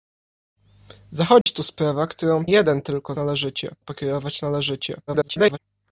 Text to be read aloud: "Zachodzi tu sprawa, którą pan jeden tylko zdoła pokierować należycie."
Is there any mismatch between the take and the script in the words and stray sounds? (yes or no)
yes